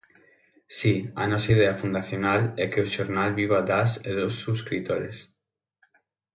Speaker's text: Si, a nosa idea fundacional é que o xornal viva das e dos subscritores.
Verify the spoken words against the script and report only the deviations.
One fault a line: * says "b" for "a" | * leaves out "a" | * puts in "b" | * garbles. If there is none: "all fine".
all fine